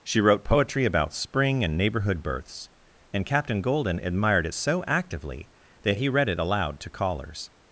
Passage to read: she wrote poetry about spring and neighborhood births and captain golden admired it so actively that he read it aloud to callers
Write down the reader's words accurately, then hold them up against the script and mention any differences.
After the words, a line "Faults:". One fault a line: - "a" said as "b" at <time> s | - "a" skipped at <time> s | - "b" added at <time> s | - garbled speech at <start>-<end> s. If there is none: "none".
she wrote poetry about spring and neighborhood births and captain golden admired it so actively that he read it aloud to callers
Faults:
none